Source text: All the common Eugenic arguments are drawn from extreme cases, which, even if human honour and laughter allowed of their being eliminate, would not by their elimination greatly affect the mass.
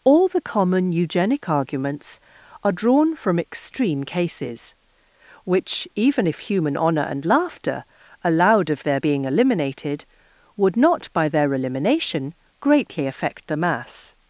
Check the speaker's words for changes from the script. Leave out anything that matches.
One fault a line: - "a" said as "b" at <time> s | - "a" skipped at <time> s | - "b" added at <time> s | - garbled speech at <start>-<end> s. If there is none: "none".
- "eliminate" said as "eliminated" at 9.2 s